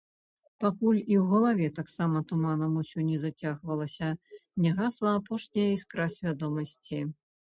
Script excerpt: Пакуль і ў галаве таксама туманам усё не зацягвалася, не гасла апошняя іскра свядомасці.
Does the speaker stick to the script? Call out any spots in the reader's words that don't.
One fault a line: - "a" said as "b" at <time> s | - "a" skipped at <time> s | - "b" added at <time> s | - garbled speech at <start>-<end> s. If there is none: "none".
none